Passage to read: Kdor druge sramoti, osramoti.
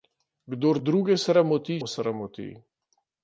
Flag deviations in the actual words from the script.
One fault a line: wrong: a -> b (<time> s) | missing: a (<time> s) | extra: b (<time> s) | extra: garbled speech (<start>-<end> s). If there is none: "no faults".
no faults